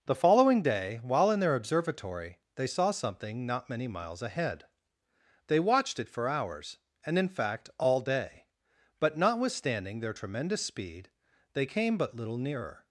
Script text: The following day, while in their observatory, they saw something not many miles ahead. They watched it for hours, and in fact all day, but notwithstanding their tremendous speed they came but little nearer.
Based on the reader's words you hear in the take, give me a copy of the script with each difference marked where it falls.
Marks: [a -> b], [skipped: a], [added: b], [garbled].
The following day, while in their observatory, they saw something not many miles ahead. They watched it for hours, and in fact all day, but notwithstanding their tremendous speed they came but little nearer.